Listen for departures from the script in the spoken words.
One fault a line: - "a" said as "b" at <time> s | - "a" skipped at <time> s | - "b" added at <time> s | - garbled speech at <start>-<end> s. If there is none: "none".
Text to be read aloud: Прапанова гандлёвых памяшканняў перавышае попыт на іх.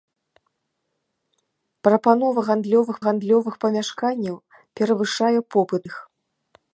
- "гандлёвых" added at 3.1 s
- "на" skipped at 5.8 s